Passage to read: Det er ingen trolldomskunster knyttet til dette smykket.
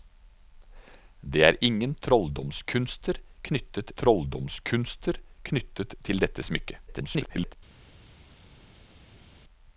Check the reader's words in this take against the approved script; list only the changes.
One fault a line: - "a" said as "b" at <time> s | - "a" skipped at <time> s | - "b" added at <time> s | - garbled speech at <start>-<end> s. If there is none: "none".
- "trolldomskunster knyttet" added at 4.0 s
- garbled speech at 6.9-7.5 s